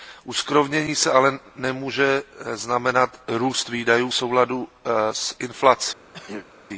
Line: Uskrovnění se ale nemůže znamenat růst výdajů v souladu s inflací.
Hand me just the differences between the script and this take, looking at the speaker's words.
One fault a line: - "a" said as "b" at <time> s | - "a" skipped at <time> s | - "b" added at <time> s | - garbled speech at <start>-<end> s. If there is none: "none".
none